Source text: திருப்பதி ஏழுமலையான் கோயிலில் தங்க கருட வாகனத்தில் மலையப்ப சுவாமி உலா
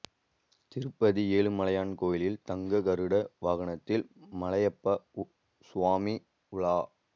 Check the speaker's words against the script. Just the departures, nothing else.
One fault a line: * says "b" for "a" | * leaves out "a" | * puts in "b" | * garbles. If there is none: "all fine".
all fine